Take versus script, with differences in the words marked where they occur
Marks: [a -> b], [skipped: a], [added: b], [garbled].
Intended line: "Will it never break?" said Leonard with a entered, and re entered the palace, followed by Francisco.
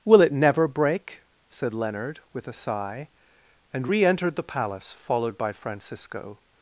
"Will it never break?" said Leonard with a [entered, -> sigh] and re entered the palace, followed by Francisco.